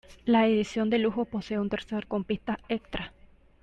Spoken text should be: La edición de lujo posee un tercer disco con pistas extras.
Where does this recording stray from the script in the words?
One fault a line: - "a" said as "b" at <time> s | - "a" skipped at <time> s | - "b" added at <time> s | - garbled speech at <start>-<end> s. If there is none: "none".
- "disco" skipped at 2.1 s